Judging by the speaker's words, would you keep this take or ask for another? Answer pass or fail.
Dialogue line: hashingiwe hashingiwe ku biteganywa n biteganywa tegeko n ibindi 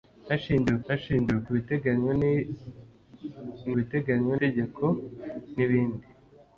pass